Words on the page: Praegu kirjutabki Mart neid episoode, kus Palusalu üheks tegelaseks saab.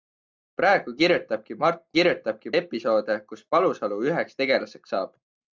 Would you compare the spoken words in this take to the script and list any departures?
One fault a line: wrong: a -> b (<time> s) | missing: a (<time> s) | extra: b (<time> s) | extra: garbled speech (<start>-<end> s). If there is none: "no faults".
wrong: neid -> kirjutabki (2.0 s)